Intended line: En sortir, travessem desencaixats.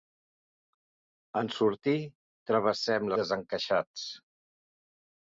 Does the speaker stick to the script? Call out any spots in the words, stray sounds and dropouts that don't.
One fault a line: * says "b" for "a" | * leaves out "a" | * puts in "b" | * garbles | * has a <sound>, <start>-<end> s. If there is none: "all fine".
all fine